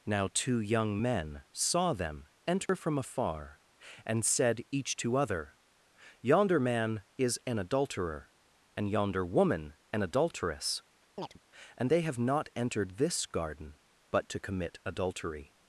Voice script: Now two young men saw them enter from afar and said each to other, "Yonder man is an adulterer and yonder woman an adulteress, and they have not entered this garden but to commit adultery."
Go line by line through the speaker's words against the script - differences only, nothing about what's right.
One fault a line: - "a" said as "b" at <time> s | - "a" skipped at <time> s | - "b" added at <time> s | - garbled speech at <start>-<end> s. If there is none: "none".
none